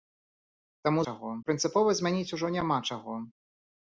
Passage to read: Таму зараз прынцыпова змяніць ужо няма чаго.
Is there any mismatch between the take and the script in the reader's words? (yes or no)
yes